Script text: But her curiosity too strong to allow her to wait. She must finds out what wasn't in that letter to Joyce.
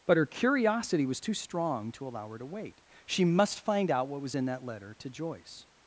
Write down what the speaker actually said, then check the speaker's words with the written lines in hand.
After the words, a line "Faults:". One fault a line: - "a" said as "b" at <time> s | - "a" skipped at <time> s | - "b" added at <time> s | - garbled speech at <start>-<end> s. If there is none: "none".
But her curiosity was too strong to allow her to wait. She must find out what was in that letter to Joyce.
Faults:
- "was" added at 1.1 s
- "finds" said as "find" at 3.6 s
- "wasn't" said as "was" at 4.2 s